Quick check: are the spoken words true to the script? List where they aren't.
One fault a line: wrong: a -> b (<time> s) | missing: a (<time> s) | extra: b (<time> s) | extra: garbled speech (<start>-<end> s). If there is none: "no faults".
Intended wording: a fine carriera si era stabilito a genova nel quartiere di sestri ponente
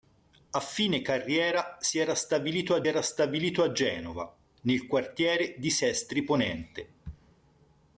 extra: era stabilito a (2.9 s)